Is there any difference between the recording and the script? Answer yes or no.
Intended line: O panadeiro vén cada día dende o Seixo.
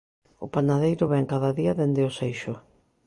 no